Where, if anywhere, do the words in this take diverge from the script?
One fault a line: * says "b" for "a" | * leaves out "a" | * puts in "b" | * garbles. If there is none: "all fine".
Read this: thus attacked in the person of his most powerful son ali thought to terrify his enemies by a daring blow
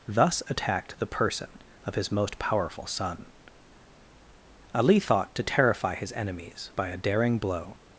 * leaves out "in"